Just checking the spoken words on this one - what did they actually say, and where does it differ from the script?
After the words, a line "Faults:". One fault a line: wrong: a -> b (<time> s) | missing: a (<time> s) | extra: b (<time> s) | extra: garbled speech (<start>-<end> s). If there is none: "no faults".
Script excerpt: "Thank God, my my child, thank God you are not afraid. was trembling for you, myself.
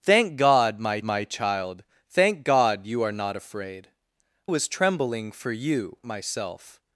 "Thank God, my my child, thank God you are not afraid. was trembling for you, myself.
Faults:
no faults